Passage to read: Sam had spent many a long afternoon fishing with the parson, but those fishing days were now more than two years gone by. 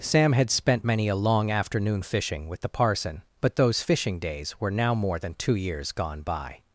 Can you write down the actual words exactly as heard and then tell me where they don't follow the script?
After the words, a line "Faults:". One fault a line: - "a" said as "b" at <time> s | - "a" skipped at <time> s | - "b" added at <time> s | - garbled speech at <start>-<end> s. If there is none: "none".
Sam had spent many a long afternoon fishing with the parson, but those fishing days were now more than two years gone by.
Faults:
none